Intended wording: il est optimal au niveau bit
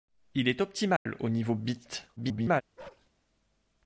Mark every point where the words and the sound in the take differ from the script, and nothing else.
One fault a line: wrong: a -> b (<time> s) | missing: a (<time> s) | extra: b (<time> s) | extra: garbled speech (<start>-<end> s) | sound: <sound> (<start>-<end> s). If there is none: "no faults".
sound: dropout (1.0-1.1 s)
extra: garbled speech (2.2-2.6 s)
sound: bark (2.8-3.1 s)